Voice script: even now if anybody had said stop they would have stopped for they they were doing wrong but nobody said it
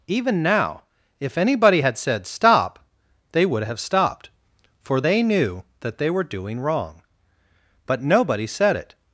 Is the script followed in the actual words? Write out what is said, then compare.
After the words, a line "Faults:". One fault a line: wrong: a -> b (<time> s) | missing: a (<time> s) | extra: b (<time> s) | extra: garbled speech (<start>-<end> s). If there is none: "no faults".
even now if anybody had said stop they would have stopped for they knew that they were doing wrong but nobody said it
Faults:
extra: knew that (5.2 s)